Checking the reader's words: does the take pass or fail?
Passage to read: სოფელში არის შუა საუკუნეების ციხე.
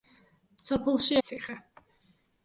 fail